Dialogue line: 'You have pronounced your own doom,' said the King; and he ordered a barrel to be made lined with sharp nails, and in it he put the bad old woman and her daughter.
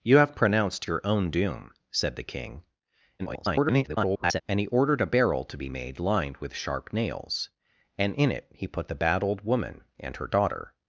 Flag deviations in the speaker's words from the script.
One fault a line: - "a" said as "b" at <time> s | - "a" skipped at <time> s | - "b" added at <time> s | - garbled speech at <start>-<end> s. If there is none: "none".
- garbled speech at 3.2-4.4 s